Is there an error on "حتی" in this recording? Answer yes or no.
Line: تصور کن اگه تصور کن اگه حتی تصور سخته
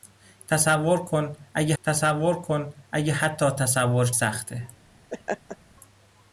no